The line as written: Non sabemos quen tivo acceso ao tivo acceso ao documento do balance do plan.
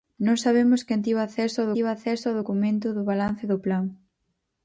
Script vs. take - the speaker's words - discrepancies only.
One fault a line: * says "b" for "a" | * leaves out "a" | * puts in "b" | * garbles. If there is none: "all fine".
all fine